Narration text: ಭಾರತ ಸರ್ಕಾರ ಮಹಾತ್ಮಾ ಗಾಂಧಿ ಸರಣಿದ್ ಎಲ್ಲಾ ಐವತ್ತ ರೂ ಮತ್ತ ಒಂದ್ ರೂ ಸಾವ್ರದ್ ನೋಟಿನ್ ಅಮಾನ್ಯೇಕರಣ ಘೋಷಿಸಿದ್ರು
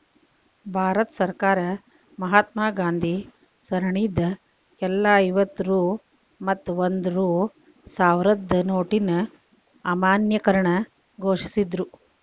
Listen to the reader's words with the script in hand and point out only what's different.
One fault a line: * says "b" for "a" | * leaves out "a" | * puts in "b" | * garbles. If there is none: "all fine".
all fine